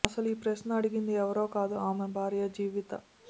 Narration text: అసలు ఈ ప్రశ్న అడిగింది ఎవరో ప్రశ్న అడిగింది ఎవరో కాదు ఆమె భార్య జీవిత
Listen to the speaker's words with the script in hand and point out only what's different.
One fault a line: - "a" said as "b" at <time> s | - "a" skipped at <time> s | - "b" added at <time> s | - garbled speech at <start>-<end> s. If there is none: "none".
- "ప్రశ్న అడిగింది ఎవరో" skipped at 1.4 s